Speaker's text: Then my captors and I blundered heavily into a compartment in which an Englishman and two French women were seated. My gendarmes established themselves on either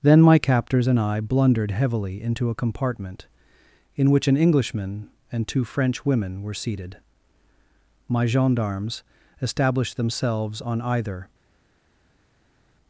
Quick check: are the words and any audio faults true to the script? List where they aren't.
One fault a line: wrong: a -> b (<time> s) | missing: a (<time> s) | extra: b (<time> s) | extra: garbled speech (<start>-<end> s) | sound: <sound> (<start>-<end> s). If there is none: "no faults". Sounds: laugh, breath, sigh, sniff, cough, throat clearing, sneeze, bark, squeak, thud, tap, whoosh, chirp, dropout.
no faults